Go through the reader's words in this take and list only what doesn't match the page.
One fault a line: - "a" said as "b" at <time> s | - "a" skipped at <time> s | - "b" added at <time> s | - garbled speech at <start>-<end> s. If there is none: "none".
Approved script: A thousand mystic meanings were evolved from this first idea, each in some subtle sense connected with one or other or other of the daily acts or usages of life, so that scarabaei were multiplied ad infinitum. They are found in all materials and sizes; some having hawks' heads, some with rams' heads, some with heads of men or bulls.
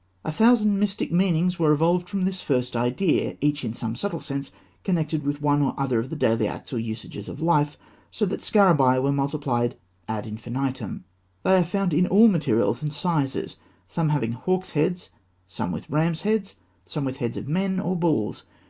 - "or other" skipped at 6.0 s